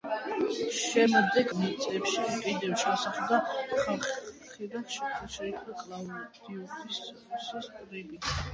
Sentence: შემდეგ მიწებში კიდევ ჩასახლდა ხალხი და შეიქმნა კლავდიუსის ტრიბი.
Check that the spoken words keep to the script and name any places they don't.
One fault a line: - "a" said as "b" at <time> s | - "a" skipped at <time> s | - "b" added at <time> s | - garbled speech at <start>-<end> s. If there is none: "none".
none